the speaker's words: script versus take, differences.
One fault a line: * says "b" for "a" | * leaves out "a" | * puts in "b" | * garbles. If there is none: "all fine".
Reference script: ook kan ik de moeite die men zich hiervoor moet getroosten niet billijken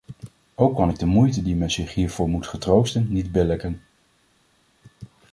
all fine